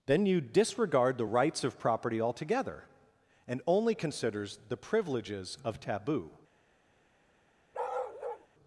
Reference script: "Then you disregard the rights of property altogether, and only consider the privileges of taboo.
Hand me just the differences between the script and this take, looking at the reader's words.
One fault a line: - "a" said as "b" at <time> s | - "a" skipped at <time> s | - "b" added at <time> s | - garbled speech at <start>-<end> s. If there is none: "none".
- "consider" said as "considers" at 3.9 s